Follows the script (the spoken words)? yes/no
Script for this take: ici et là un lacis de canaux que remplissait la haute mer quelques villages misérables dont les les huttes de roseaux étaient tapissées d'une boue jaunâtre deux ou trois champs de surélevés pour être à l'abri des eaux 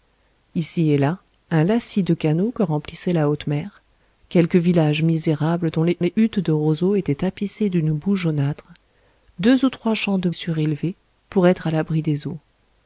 yes